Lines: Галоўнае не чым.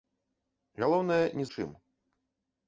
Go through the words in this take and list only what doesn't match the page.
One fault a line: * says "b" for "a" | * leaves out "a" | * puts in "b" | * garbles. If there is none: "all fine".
all fine